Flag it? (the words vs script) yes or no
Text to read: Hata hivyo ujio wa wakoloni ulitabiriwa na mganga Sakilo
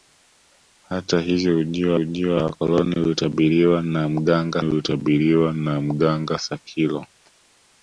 yes